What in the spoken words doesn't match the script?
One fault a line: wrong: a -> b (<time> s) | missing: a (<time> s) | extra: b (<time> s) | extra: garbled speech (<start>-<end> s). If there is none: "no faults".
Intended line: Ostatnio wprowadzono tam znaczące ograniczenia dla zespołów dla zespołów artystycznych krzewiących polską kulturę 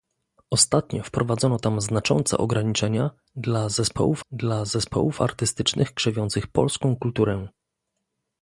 no faults